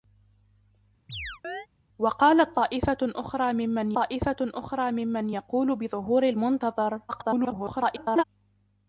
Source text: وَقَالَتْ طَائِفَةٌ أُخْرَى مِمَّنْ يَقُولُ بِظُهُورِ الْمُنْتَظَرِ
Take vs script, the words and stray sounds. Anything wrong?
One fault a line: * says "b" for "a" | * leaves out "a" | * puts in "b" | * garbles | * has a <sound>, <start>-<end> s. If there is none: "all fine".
* has a chirp, 1.1-1.7 s
* puts in "طَائِفَةٌ أُخْرَى مِمَّنْ"
* garbles